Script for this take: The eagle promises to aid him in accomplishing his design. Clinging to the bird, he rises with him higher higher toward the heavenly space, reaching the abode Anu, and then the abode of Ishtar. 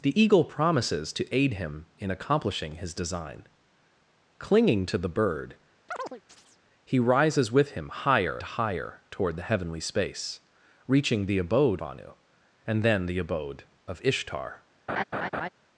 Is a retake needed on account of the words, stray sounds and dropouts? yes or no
yes